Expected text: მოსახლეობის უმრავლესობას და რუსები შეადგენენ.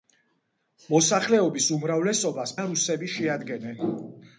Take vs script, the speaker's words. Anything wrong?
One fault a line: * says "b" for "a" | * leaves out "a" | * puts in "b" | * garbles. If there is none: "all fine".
all fine